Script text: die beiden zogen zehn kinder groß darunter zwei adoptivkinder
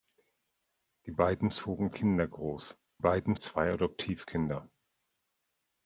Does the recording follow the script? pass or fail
fail